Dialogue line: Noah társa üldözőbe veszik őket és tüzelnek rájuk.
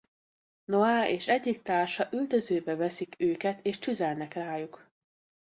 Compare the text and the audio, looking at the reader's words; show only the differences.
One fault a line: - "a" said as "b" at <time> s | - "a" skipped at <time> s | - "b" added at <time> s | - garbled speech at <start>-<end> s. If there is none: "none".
- "és egyik" added at 1.1 s